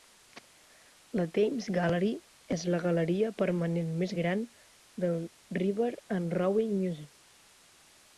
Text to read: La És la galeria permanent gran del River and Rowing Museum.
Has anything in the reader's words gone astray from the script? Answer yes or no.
yes